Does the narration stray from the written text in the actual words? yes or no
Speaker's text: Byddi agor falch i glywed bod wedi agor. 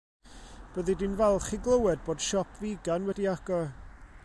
yes